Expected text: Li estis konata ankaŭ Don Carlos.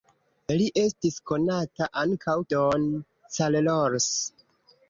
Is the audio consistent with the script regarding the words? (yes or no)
yes